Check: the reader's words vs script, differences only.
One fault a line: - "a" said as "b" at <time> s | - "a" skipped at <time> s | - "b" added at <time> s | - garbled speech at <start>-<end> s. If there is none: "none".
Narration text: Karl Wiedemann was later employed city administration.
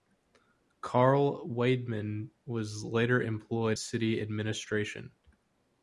none